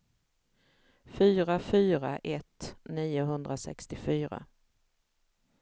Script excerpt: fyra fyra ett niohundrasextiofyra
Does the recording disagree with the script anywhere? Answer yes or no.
no